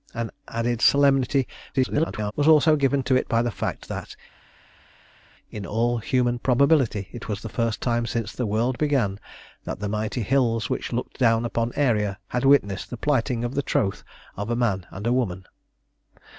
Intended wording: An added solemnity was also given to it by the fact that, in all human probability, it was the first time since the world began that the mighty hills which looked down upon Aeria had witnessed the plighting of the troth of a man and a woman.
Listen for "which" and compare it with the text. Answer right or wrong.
right